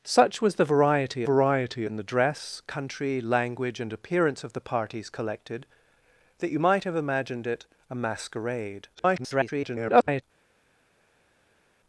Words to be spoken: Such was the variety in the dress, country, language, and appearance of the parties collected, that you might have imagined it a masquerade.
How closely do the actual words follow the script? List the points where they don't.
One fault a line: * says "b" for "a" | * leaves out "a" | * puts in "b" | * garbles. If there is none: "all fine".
* puts in "variety"
* garbles